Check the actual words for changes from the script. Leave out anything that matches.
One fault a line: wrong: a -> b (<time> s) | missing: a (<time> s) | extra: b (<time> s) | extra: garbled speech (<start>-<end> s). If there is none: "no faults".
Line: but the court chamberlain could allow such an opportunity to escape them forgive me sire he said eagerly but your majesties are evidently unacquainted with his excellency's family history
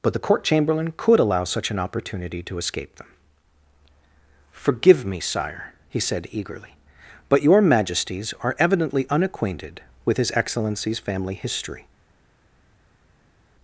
no faults